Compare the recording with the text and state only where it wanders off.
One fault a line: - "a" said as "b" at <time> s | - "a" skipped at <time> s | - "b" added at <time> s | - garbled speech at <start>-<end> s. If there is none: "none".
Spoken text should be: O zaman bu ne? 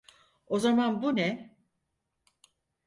none